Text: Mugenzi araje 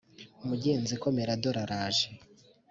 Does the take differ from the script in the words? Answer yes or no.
yes